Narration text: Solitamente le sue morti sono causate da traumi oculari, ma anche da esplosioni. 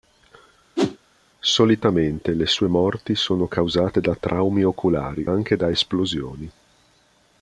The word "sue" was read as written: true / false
true